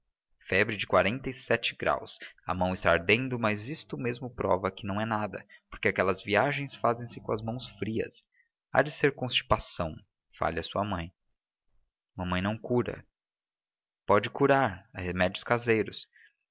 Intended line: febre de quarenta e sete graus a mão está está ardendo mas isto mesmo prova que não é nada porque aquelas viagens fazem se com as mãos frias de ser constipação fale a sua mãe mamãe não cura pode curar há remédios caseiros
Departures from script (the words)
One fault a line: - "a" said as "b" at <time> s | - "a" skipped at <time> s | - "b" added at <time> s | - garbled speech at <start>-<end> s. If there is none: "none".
- "está" skipped at 2.9 s
- "há" added at 8.7 s